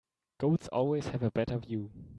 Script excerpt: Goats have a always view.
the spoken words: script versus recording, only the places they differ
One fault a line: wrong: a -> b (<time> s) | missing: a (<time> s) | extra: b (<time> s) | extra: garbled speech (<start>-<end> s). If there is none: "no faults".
extra: always (0.7 s)
wrong: always -> better (1.3 s)